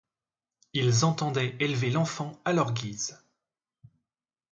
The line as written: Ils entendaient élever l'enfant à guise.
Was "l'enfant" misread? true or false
false